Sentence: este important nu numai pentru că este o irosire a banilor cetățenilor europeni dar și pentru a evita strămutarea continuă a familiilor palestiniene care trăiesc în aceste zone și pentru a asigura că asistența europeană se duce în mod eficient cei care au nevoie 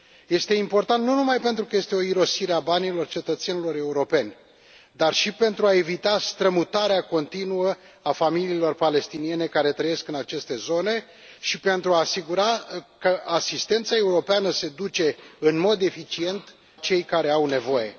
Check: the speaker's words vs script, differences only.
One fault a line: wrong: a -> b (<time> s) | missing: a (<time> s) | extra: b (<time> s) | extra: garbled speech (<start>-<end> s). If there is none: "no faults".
no faults